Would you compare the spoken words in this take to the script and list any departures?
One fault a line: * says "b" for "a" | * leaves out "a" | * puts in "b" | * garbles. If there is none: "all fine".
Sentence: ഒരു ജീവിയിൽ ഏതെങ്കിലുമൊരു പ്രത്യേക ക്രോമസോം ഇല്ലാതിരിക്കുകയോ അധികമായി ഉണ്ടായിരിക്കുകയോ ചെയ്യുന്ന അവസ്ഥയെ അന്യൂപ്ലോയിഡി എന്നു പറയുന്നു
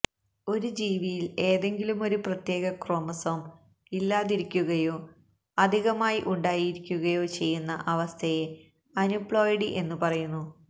all fine